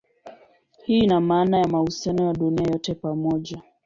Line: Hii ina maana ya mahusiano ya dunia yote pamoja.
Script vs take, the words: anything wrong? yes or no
no